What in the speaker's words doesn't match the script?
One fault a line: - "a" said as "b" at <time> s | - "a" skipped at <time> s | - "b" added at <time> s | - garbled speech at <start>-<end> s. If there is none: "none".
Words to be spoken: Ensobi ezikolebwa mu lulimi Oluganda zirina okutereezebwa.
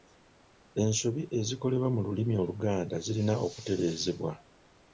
none